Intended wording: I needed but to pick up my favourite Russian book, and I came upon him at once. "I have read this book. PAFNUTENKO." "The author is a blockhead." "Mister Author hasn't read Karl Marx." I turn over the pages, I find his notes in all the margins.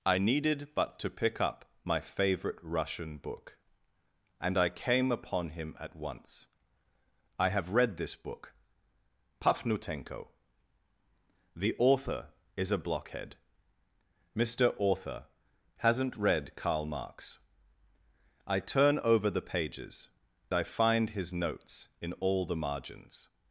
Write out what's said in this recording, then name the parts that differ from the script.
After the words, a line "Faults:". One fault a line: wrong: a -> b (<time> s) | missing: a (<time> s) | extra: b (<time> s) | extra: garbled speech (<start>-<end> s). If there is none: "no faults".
I needed but to pick up my favourite Russian book, and I came upon him at once. "I have read this book. PAFNUTENKO." "The author is a blockhead." "Mister Author hasn't read Karl Marx." I turn over the pages, I find his notes in all the margins.
Faults:
no faults